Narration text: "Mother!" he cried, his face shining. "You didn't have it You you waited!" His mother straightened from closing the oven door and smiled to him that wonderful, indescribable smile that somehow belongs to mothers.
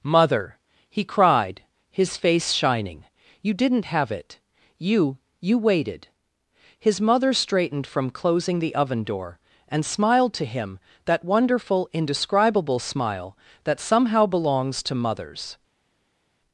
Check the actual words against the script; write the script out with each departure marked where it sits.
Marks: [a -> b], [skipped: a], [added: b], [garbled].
"Mother!" he cried, his face shining. "You didn't have it You you waited!" His mother straightened from closing the oven door and smiled to him that wonderful, indescribable smile that somehow belongs to mothers.